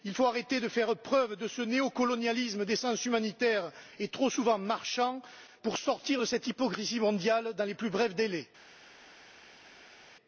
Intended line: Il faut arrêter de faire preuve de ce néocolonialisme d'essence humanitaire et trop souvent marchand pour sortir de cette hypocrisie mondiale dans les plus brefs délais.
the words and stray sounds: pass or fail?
pass